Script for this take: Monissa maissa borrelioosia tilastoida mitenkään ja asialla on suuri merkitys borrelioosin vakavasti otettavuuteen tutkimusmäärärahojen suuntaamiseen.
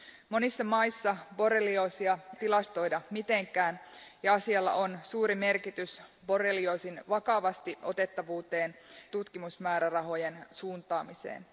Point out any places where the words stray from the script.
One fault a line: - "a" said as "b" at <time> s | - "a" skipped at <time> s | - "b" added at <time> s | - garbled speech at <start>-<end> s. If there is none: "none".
none